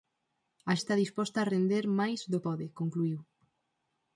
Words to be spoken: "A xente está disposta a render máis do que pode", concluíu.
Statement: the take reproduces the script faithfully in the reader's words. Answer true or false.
false